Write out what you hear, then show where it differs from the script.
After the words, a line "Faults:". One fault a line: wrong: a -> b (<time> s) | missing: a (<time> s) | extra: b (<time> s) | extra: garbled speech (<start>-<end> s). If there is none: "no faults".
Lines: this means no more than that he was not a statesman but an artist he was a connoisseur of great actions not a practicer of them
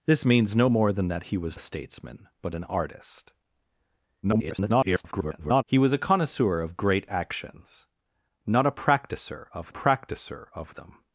this means no more than that he was a statesman but an artist [garbled] he was a connoisseur of great actions not a practicer of practicer of them
Faults:
missing: not (1.6 s)
extra: garbled speech (4.2-5.6 s)
extra: practicer of (9.7 s)